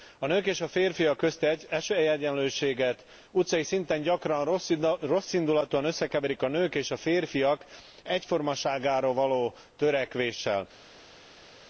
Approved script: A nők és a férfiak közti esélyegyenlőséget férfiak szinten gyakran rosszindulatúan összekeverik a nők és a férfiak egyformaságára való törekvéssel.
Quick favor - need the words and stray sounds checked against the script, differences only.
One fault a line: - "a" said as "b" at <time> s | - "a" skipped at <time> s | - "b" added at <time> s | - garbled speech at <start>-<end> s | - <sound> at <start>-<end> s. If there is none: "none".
- "férfiak" said as "utcai" at 3.3 s